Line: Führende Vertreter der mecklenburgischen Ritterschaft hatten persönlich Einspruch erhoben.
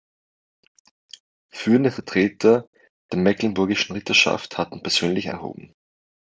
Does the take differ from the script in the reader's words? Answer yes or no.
yes